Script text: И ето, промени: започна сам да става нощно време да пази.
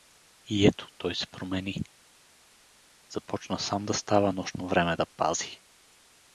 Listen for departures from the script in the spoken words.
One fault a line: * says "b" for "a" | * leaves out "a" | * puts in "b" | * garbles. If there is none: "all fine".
* puts in "той се"